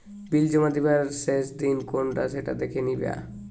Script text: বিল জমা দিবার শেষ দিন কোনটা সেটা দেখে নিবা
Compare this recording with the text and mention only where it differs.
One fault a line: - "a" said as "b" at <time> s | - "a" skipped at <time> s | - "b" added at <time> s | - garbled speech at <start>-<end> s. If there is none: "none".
none